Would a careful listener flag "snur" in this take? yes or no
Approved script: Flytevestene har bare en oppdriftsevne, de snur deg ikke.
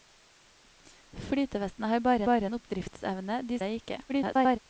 yes